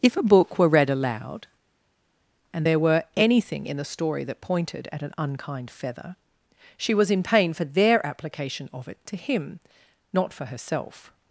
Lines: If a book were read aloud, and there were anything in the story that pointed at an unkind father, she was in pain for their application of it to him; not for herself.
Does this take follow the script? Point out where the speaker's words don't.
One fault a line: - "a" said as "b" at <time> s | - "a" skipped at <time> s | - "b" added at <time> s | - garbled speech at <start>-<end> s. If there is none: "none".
- "father" said as "feather" at 5.7 s